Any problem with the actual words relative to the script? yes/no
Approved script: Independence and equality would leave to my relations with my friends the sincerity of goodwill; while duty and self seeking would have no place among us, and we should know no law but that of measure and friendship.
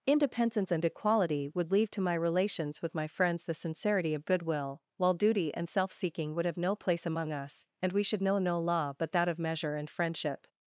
no